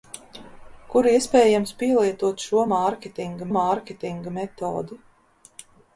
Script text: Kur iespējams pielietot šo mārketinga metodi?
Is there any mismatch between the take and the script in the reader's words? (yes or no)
yes